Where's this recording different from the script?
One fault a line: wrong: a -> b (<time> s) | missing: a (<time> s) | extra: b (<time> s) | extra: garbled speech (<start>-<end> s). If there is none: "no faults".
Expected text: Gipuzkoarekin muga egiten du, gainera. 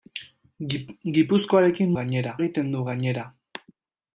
wrong: muga -> gainera (2.0 s)